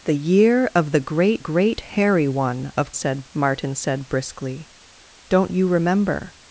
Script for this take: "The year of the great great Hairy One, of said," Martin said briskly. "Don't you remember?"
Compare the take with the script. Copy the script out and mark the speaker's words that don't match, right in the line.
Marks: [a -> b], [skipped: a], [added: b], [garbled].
"The year of the great great Hairy One, of said," Martin said briskly. "Don't you remember?"